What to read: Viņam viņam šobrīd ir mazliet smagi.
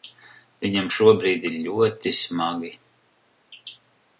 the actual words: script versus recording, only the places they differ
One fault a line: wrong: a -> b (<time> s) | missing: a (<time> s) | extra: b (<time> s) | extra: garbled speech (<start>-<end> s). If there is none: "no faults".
missing: viņam (0.9 s)
wrong: mazliet -> ļoti (1.7 s)